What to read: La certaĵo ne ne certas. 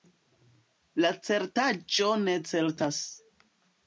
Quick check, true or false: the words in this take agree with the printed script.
false